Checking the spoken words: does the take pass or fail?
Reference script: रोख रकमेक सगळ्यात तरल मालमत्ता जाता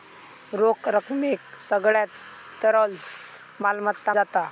pass